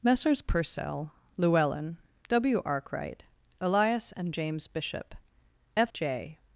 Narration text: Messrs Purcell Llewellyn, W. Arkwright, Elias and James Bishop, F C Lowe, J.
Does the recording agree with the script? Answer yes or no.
no